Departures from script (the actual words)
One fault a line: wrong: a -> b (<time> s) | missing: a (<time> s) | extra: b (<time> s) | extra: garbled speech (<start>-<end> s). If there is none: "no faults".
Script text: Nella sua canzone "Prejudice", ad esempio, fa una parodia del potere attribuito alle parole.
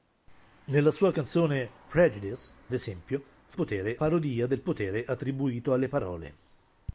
missing: ad (2.5 s)
wrong: una -> potere (3.5 s)